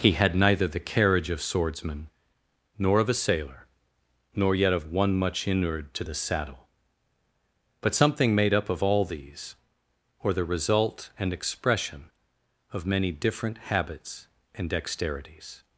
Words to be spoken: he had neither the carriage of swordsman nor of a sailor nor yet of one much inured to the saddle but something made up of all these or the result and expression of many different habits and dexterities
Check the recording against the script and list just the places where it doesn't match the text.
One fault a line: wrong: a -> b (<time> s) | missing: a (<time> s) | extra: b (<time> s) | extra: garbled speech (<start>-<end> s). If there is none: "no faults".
no faults